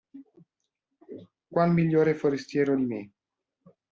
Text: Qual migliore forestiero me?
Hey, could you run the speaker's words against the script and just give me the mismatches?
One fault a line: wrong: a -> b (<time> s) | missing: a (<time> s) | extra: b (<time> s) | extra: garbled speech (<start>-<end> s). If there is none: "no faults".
extra: di (2.7 s)